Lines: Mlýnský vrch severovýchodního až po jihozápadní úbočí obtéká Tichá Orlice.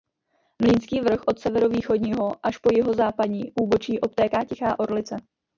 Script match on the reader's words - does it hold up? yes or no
no